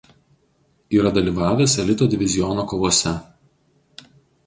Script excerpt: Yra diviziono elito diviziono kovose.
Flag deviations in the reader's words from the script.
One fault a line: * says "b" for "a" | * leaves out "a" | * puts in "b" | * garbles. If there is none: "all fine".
* says "dalyvavęs" for "diviziono"